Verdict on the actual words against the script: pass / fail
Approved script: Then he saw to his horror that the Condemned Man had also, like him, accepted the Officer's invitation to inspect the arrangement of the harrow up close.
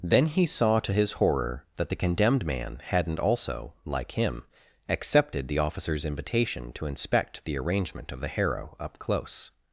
fail